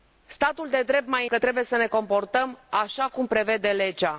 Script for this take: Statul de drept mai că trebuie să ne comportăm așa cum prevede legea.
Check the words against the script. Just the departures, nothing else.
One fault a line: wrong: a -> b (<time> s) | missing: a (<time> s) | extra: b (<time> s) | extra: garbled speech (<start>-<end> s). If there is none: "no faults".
no faults